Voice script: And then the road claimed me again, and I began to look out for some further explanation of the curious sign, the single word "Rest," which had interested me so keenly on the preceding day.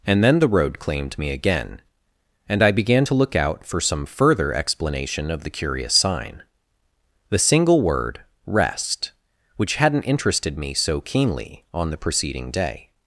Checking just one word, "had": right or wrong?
wrong